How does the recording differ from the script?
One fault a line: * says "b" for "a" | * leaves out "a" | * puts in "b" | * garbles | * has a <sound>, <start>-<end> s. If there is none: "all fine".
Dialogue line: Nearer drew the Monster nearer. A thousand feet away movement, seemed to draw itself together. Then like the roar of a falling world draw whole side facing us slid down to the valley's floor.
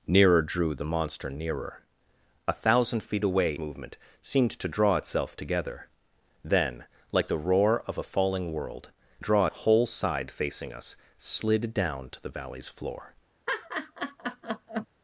* has a laugh, 13.5-14.9 s